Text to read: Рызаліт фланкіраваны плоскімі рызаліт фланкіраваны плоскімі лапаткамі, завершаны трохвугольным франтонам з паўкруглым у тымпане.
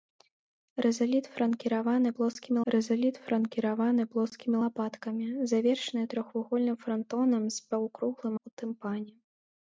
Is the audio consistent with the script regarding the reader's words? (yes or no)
yes